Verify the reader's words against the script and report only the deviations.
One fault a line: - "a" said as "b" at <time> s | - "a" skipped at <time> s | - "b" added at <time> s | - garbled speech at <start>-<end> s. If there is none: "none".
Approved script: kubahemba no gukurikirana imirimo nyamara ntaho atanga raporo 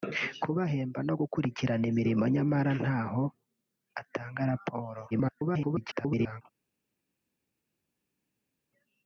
- garbled speech at 5.1-6.4 s